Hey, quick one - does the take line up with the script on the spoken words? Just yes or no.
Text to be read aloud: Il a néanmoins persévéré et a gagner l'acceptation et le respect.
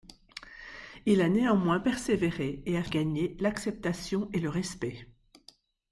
yes